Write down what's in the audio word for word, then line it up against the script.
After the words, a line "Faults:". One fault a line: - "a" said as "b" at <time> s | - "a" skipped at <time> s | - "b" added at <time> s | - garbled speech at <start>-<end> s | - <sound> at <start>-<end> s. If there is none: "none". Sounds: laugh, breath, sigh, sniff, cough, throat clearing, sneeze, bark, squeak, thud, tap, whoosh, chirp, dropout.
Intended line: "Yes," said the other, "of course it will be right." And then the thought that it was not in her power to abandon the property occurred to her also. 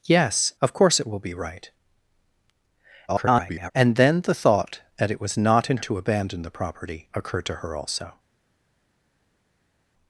"Yes," "of course it will be right." [garbled] And then the thought that it was not in to abandon the property occurred to her also.
Faults:
- "said the other" skipped at 0.5 s
- garbled speech at 3.1-3.7 s
- "her power" skipped at 5.8 s